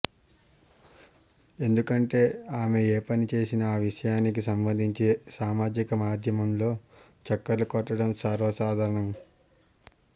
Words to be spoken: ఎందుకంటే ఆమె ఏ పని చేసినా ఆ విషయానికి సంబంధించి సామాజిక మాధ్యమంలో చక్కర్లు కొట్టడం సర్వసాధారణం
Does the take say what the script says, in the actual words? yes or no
yes